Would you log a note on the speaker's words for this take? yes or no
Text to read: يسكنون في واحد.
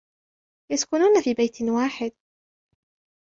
yes